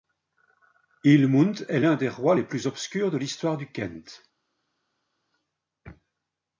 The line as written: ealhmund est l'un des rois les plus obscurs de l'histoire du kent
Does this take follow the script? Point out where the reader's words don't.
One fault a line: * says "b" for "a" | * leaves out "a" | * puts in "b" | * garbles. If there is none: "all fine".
all fine